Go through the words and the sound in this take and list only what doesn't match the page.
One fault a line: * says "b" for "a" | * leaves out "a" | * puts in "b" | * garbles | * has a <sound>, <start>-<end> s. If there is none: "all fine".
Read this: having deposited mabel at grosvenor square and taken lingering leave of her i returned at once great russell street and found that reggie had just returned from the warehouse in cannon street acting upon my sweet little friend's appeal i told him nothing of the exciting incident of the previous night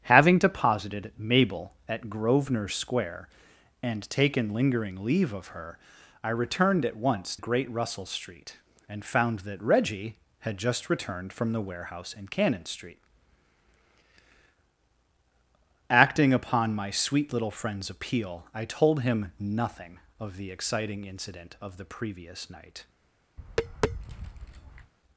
* has a tap, 23.4-24.9 s